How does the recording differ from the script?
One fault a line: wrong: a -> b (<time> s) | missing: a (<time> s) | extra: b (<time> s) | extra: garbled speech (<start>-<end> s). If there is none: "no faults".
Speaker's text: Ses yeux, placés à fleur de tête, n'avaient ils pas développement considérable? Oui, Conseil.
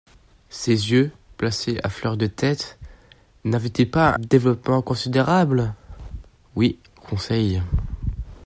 no faults